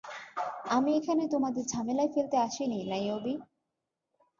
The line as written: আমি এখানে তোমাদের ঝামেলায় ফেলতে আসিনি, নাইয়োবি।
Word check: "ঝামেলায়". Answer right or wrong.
right